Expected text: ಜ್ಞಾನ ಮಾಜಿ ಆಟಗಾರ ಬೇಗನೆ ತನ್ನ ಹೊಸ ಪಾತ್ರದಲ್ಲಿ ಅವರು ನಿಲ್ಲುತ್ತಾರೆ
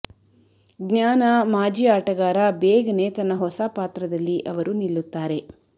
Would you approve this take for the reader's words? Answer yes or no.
yes